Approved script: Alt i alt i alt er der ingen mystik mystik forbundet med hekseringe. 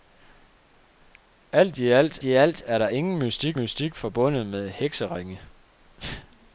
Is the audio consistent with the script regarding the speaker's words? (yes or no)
yes